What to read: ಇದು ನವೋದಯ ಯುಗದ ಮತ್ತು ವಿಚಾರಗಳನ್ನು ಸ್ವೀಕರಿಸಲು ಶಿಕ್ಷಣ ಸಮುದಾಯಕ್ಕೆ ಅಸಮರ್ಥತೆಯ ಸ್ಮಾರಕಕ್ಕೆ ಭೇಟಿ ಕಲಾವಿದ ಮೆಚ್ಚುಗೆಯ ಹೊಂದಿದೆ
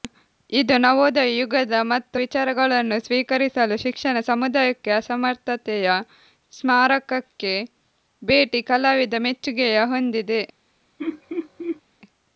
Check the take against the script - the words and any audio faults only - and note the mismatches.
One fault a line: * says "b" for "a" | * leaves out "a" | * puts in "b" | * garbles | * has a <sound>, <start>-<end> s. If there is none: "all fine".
* has a laugh, 11.0-11.8 s